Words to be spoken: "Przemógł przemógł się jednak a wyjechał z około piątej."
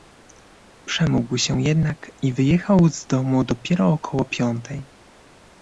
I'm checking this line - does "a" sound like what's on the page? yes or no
no